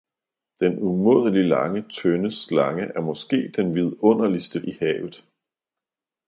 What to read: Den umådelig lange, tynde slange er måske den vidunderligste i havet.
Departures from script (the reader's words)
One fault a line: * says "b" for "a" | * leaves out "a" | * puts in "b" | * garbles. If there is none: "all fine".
all fine